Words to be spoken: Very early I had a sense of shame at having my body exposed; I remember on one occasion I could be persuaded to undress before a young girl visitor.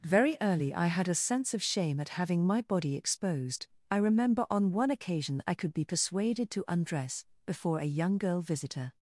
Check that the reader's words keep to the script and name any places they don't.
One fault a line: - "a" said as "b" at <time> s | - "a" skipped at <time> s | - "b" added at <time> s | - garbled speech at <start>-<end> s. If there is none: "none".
none